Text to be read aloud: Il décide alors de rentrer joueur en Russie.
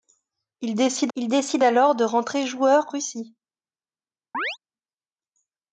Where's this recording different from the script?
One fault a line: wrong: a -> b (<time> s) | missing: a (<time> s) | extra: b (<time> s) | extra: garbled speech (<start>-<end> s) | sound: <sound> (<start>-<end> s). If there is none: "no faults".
extra: il décide (1.2 s)
missing: en (2.9 s)
sound: chirp (4.3-4.6 s)